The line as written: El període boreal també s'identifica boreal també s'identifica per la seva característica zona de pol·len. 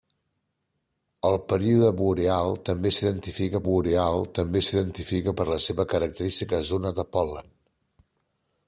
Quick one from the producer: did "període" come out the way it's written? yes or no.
yes